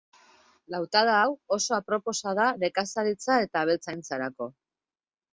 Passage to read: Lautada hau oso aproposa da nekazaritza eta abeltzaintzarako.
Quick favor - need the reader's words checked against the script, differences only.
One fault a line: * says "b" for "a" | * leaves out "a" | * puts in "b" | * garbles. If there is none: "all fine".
all fine